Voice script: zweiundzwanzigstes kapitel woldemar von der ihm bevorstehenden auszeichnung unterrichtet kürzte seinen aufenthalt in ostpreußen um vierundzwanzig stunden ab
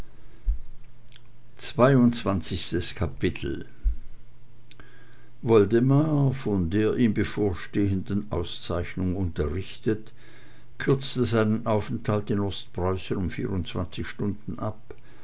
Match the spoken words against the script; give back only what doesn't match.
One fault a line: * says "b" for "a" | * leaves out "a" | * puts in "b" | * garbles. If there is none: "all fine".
all fine